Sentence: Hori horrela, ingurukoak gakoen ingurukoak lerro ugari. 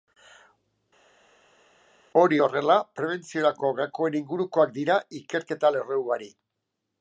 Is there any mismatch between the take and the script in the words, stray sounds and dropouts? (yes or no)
yes